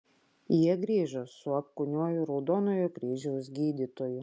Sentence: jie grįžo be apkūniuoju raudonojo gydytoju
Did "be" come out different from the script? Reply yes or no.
yes